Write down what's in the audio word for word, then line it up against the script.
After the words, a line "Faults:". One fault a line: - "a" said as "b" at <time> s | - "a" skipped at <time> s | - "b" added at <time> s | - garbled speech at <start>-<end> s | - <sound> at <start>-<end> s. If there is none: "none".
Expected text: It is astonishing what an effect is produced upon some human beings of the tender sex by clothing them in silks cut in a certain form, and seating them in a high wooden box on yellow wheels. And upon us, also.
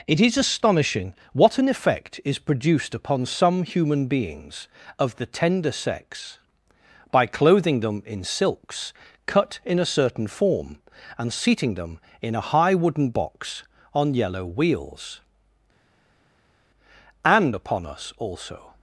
It is astonishing what an effect is produced upon some human beings of the tender sex by clothing them in silks cut in a certain form, and seating them in a high wooden box on yellow wheels. And upon us, also.
Faults:
none